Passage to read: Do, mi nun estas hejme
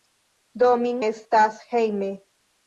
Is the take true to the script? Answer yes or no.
no